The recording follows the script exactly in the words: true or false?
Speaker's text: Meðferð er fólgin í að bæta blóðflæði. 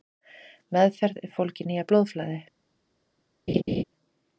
false